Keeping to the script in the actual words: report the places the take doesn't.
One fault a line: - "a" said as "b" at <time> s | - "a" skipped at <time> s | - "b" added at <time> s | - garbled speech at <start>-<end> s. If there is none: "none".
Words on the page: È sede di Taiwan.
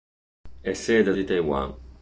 none